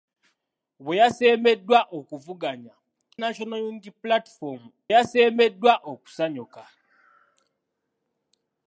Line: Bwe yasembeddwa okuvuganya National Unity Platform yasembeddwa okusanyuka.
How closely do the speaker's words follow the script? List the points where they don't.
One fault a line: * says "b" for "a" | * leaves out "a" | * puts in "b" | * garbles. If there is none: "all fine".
all fine